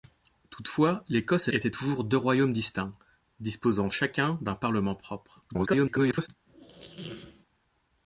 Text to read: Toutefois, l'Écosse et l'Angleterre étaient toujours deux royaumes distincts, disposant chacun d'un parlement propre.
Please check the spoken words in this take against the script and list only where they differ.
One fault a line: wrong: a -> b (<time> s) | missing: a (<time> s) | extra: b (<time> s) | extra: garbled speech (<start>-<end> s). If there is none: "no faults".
missing: l'Angleterre (1.5 s)
extra: garbled speech (5.5-6.3 s)